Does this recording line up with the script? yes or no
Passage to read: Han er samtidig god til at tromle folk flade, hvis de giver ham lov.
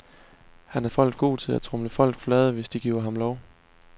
no